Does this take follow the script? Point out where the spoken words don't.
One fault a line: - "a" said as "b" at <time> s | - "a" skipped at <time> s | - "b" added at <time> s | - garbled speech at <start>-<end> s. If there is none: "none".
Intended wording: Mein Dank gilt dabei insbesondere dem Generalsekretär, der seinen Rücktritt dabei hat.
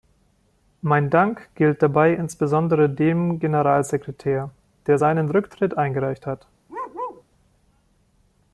- "dabei" said as "eingereicht" at 5.7 s